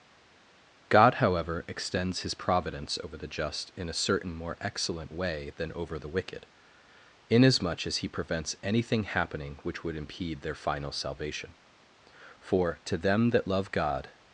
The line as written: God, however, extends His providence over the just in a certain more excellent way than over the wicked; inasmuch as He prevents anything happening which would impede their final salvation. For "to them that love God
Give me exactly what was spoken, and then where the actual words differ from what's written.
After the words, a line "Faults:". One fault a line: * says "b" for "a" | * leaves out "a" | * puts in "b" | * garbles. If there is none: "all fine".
God, however, extends His providence over the just in a certain more excellent way than over the wicked; inasmuch as He prevents anything happening which would impede their final salvation. For "to them that love God
Faults:
all fine